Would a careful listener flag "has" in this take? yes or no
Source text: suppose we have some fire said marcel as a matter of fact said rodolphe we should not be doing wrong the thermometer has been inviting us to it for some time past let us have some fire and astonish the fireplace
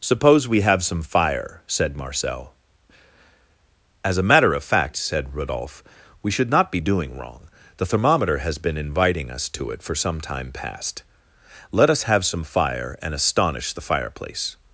no